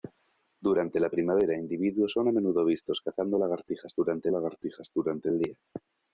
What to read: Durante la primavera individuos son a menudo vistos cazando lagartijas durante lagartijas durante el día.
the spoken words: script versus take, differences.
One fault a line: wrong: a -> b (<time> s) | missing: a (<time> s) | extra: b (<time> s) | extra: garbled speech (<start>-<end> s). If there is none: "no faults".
no faults